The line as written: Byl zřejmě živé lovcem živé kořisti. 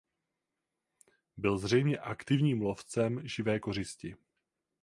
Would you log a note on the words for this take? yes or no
yes